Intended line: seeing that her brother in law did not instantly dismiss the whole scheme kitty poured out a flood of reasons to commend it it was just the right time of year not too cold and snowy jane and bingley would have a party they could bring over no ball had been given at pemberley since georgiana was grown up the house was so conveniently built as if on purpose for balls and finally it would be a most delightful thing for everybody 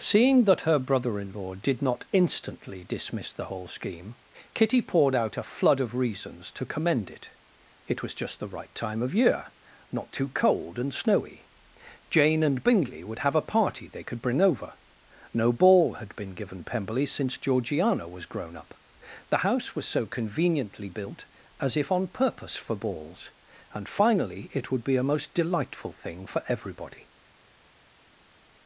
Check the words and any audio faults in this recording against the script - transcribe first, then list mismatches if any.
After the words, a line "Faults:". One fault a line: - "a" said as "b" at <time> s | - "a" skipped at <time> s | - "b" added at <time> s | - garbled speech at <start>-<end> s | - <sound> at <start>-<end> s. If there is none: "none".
seeing that her brother in law did not instantly dismiss the whole scheme kitty poured out a flood of reasons to commend it it was just the right time of year not too cold and snowy jane and bingley would have a party they could bring over no ball had been given pemberley since georgiana was grown up the house was so conveniently built as if on purpose for balls and finally it would be a most delightful thing for everybody
Faults:
- "at" skipped at 16.6 s